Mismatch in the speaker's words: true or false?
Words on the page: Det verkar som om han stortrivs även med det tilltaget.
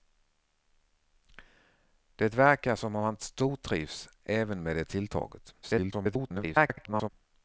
true